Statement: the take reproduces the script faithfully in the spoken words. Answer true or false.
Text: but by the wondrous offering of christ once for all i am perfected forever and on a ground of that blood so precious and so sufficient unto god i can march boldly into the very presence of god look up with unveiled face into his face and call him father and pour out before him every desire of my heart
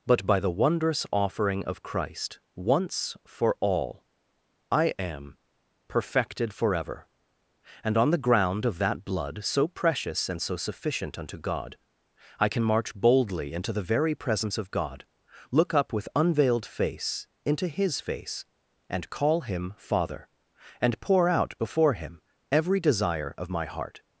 false